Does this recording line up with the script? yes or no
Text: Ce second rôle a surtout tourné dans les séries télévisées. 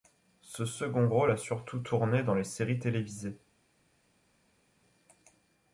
yes